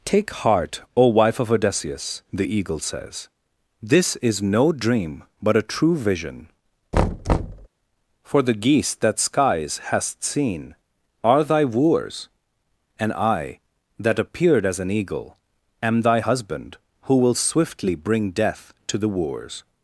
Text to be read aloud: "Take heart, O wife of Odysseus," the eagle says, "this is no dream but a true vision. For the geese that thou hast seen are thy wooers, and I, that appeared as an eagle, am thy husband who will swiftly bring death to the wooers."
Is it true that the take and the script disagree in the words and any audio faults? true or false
true